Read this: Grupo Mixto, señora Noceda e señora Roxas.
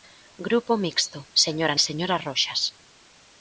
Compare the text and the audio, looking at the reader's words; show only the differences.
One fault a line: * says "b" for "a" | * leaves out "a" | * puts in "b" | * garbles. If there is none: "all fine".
* leaves out "Noceda"